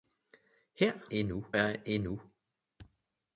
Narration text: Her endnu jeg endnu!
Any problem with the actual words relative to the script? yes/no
no